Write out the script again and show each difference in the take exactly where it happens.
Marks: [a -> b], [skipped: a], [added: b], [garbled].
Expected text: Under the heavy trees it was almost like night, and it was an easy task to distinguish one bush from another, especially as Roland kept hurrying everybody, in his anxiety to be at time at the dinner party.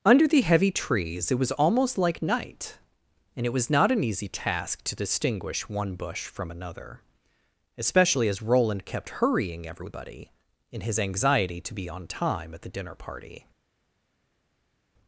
Under the heavy trees it was almost like night, and it was [added: not] an easy task to distinguish one bush from another, especially as Roland kept hurrying everybody, in his anxiety to be [at -> on] time at the dinner party.